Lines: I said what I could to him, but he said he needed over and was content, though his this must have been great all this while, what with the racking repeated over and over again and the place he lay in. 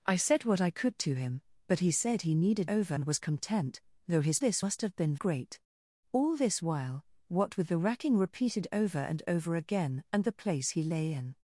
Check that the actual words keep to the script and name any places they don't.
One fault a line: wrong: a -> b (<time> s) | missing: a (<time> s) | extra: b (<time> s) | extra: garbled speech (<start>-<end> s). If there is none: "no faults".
no faults